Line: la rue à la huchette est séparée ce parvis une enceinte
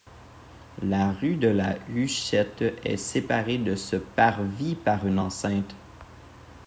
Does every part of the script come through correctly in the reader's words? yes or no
no